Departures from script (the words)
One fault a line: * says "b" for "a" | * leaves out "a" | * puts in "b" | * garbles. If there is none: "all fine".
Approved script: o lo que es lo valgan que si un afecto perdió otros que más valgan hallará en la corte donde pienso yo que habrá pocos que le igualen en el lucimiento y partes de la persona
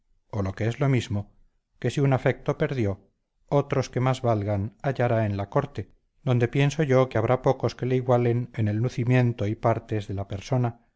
* says "mismo" for "valgan"